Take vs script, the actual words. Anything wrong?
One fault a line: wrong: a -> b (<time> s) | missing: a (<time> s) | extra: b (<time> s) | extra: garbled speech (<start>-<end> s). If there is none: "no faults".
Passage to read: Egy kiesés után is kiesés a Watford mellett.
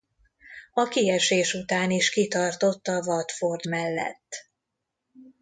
wrong: Egy -> A (0.7 s)
wrong: kiesés -> kitartott (2.1 s)